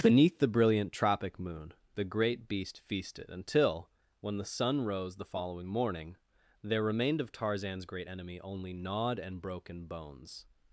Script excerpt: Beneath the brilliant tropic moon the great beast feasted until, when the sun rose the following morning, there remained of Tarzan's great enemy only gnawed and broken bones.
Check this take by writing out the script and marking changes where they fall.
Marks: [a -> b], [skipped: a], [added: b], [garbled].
Beneath the brilliant tropic moon the great beast feasted until, when the sun rose the following morning, there remained of Tarzan's great enemy only gnawed and broken bones.